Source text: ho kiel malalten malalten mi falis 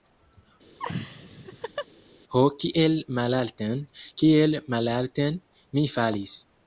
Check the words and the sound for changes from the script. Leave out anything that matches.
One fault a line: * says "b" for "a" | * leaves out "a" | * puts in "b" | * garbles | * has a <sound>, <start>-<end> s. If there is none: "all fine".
* has a laugh, 0.8-1.9 s
* puts in "kiel"